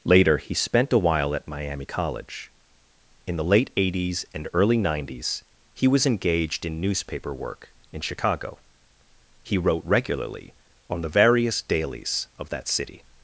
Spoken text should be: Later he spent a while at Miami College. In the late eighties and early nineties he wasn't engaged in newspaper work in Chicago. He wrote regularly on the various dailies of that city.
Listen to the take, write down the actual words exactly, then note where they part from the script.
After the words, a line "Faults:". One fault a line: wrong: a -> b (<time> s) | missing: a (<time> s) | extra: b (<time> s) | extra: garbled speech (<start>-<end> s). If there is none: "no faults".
Later he spent a while at Miami College. In the late eighties and early nineties he was engaged in newspaper work in Chicago. He wrote regularly on the various dailies of that city.
Faults:
wrong: wasn't -> was (5.9 s)